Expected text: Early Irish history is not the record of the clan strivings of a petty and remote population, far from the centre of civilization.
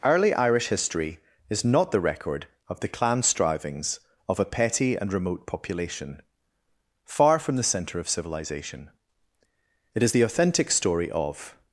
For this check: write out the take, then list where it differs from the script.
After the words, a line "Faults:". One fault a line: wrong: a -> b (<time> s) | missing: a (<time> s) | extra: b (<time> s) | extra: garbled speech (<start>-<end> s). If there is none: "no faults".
Early Irish history is not the record of the clan strivings of a petty and remote population, far from the centre of civilization. It is the authentic story of
Faults:
extra: It is the authentic story of (9.9 s)